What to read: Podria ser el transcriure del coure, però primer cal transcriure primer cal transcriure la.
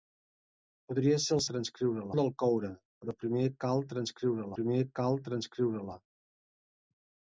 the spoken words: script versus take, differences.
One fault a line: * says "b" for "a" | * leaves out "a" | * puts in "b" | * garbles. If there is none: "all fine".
all fine